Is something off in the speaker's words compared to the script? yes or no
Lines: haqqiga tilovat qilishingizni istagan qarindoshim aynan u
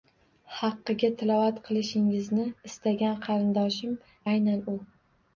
no